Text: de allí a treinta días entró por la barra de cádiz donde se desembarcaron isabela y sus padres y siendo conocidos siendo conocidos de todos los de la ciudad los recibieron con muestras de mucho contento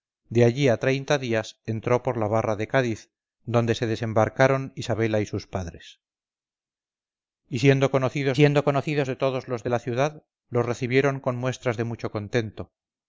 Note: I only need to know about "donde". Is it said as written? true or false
true